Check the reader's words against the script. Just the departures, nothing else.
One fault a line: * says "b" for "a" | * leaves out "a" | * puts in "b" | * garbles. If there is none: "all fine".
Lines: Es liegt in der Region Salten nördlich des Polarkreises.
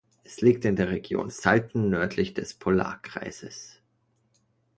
all fine